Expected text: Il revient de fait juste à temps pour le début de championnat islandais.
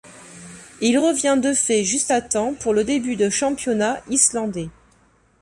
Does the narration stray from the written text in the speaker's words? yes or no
no